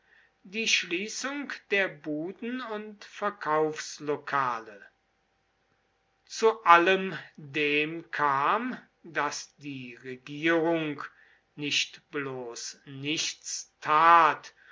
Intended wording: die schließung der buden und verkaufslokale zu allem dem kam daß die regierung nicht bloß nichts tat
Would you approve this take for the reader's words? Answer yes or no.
yes